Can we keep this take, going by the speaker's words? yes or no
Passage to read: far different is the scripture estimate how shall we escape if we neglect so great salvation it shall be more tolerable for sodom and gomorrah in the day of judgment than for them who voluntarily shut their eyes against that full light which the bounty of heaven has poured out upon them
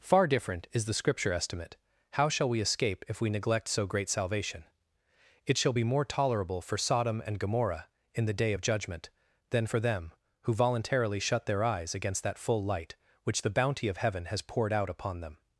yes